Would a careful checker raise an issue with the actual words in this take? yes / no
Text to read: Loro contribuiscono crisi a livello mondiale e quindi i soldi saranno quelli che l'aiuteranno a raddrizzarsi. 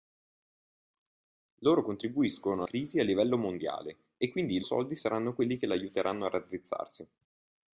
no